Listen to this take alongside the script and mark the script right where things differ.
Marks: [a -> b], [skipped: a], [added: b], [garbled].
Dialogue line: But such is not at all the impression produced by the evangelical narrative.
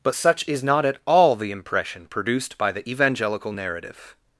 But such is not at all the impression produced by the evangelical narrative.